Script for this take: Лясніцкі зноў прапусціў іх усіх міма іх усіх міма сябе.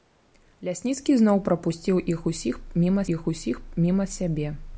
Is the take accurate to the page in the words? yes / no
yes